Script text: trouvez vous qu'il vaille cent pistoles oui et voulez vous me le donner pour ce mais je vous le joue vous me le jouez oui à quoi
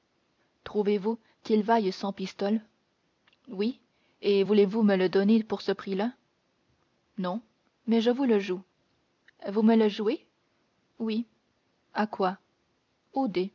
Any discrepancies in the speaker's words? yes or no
yes